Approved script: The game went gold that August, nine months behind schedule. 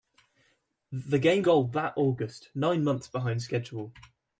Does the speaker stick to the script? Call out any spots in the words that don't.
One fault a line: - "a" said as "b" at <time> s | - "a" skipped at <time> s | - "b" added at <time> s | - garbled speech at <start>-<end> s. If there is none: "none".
- "went" skipped at 1.4 s